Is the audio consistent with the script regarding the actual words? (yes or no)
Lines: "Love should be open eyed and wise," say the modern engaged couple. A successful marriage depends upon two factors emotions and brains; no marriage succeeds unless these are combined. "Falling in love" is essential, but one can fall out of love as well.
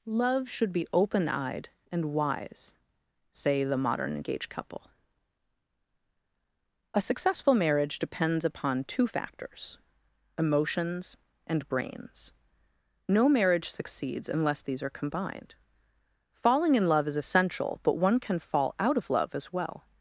yes